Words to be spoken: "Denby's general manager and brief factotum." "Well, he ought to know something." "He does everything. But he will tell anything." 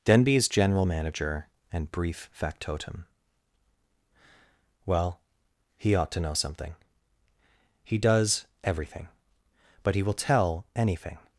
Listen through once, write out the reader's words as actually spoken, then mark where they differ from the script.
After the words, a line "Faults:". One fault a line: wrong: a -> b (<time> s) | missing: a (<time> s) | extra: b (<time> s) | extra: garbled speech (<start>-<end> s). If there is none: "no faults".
"Denby's general manager and brief factotum." "Well, he ought to know something." "He does everything. But he will tell anything."
Faults:
no faults